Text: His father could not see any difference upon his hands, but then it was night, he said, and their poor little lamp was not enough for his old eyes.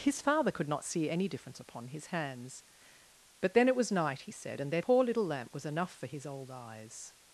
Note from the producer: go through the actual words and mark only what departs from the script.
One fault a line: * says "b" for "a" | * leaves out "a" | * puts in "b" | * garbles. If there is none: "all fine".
* leaves out "not"